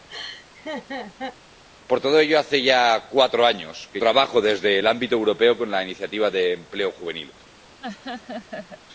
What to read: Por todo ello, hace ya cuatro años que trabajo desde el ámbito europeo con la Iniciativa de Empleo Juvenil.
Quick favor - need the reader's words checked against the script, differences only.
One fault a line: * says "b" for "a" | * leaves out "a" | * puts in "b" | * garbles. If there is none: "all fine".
all fine